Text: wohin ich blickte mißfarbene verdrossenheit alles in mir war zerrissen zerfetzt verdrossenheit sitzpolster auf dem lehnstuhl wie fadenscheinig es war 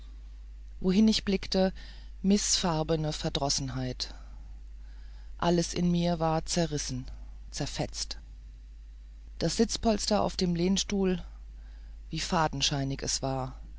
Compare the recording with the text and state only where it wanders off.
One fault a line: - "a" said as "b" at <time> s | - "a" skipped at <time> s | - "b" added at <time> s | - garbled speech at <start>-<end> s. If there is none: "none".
- "verdrossenheit" said as "das" at 9.4 s